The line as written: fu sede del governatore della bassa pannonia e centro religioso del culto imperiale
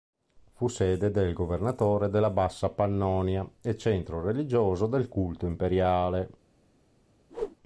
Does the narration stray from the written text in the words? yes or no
no